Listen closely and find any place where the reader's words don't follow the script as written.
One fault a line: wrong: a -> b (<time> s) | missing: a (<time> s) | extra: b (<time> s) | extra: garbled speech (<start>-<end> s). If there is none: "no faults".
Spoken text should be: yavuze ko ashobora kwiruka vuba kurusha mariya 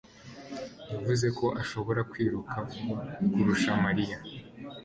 no faults